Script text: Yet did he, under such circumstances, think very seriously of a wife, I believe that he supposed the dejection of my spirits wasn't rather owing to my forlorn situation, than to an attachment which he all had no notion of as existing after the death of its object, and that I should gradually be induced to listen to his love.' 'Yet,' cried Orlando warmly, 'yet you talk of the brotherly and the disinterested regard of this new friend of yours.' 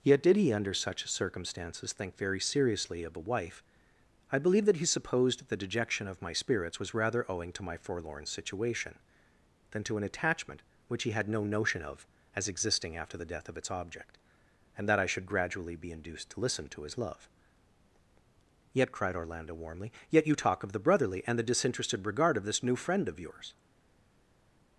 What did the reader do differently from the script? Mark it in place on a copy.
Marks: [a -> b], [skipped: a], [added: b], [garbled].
Yet did he, under such circumstances, think very seriously of a wife, I believe that he supposed the dejection of my spirits [wasn't -> was] rather owing to my forlorn situation, than to an attachment which he [skipped: all] had no notion of as existing after the death of its object, and that I should gradually be induced to listen to his love.' 'Yet,' cried Orlando warmly, 'yet you talk of the brotherly and the disinterested regard of this new friend of yours.'